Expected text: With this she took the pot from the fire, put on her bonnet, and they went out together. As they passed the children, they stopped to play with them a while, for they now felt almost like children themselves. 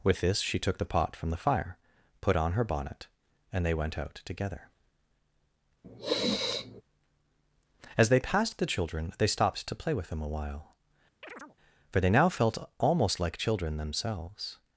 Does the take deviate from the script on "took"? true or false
false